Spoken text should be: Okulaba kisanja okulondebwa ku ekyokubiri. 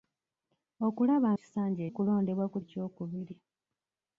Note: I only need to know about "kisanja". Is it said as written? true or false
true